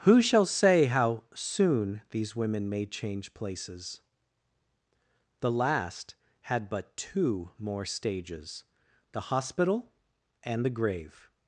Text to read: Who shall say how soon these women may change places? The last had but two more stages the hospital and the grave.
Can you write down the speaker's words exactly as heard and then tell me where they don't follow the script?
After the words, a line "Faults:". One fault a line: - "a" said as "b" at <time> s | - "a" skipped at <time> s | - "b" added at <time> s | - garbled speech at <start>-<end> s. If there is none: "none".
Who shall say how soon these women may change places? The last had but two more stages the hospital and the grave.
Faults:
none